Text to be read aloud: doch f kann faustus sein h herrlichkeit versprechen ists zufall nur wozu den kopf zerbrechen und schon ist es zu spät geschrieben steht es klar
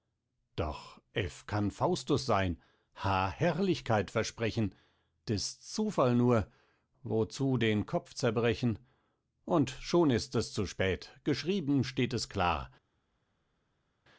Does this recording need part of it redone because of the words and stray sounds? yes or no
no